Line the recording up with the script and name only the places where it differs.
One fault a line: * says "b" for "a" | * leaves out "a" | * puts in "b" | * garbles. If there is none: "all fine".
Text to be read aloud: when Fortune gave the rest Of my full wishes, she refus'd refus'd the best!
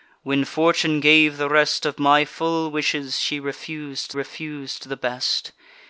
all fine